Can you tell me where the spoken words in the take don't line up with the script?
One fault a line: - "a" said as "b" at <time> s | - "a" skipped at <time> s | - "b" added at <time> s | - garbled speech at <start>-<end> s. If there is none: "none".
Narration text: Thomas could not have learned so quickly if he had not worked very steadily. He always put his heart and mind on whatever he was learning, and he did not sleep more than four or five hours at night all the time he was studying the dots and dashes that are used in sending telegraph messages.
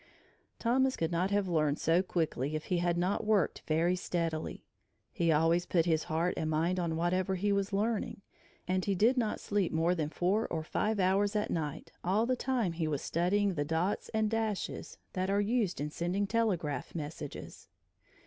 none